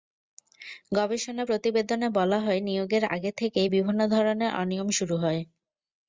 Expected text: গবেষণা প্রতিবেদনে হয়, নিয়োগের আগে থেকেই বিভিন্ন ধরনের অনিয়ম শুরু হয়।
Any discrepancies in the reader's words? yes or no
yes